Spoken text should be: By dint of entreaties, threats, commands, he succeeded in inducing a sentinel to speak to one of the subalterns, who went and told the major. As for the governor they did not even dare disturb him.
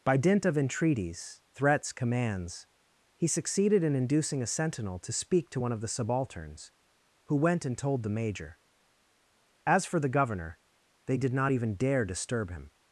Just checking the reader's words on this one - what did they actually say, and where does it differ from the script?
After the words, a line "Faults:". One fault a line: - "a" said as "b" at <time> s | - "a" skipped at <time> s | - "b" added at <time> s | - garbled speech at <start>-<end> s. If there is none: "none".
By dint of entreaties, threats, commands, he succeeded in inducing a sentinel to speak to one of the subalterns, who went and told the major. As for the governor they did not even dare disturb him.
Faults:
none